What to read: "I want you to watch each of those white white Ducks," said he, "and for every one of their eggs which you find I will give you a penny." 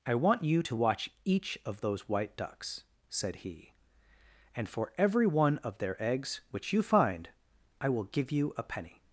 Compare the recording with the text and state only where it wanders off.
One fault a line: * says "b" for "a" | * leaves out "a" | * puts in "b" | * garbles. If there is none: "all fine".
* leaves out "white"